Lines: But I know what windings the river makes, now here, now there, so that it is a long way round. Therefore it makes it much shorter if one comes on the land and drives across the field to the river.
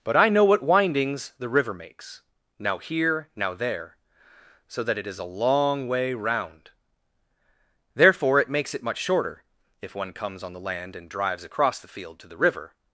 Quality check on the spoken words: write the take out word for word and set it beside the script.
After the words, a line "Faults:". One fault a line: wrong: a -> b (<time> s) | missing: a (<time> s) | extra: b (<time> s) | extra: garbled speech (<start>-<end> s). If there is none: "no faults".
But I know what windings the river makes, now here, now there, so that it is a long way round. Therefore it makes it much shorter if one comes on the land and drives across the field to the river.
Faults:
no faults